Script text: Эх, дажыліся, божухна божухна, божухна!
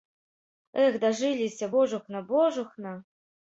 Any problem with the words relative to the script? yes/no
yes